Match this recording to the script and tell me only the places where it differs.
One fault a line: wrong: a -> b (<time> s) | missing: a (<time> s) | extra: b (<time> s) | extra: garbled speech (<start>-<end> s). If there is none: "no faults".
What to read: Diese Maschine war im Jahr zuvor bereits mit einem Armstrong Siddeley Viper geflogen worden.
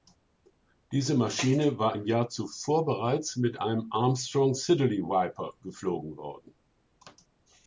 no faults